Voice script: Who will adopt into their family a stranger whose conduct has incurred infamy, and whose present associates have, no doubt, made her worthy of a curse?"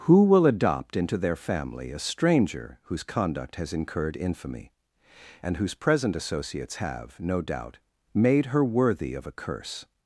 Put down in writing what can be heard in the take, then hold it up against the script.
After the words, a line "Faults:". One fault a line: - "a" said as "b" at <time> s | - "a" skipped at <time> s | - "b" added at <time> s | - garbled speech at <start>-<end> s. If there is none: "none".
Who will adopt into their family a stranger whose conduct has incurred infamy, and whose present associates have, no doubt, made her worthy of a curse?"
Faults:
none